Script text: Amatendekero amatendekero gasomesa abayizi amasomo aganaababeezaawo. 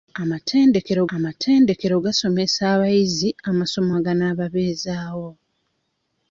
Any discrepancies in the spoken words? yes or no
no